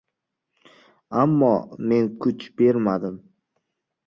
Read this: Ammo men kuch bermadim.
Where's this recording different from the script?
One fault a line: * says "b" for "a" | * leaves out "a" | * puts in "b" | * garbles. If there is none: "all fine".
all fine